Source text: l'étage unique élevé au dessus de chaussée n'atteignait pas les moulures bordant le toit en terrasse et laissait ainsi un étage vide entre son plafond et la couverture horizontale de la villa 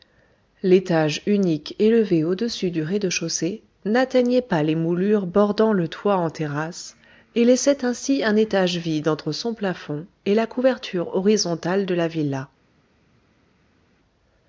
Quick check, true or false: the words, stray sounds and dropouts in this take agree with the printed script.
false